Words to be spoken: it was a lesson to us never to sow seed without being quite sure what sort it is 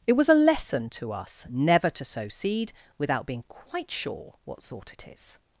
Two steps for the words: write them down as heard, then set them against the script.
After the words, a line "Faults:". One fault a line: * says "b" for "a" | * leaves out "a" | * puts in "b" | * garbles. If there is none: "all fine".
it was a lesson to us never to sow seed without being quite sure what sort it is
Faults:
all fine